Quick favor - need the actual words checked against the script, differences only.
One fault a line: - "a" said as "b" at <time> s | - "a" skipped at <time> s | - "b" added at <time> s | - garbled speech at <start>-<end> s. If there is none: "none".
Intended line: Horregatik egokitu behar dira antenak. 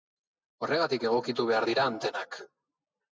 none